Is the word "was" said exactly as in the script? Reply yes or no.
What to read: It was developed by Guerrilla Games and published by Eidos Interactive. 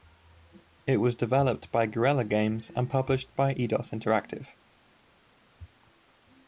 yes